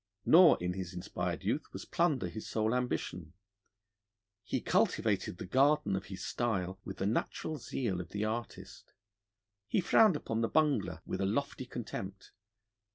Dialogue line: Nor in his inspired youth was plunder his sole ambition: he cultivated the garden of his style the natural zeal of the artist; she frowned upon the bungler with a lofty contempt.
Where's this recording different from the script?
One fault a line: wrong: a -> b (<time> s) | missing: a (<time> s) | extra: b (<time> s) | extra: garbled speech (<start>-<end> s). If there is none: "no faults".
extra: with (6.8 s)
wrong: she -> he (9.7 s)